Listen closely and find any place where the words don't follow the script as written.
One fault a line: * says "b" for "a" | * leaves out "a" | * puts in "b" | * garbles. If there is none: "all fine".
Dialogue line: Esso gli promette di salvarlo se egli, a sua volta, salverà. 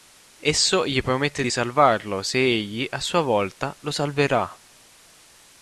* puts in "lo"